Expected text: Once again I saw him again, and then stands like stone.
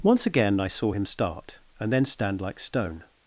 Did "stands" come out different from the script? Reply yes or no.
yes